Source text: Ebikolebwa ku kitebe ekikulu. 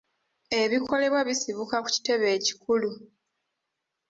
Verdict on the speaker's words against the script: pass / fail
fail